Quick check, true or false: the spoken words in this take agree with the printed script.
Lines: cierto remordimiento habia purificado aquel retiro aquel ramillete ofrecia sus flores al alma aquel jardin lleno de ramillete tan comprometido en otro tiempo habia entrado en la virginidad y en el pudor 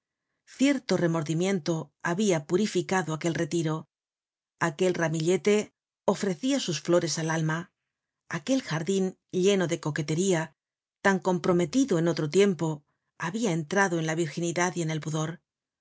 false